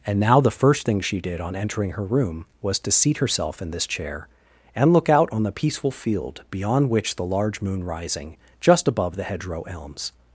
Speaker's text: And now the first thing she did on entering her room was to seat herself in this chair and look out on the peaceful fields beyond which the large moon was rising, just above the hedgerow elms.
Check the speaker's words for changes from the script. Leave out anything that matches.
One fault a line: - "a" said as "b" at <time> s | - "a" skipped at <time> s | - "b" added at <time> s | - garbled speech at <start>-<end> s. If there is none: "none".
- "fields" said as "field" at 5.9 s
- "was" skipped at 7.8 s